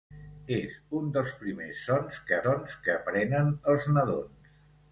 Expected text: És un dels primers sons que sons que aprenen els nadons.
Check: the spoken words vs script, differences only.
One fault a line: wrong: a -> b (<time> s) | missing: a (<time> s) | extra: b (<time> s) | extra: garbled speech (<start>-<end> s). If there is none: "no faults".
no faults